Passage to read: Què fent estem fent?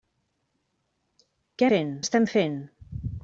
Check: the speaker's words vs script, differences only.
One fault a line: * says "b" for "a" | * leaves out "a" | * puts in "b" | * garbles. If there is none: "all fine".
all fine